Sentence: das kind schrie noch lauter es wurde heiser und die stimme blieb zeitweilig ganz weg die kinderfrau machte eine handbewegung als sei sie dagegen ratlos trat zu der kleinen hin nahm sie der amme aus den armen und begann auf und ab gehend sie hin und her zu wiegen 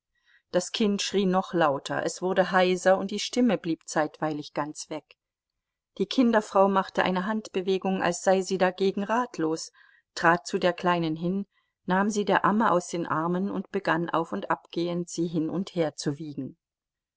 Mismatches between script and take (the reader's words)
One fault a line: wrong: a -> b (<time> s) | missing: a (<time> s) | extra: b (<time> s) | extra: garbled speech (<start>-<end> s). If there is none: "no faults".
no faults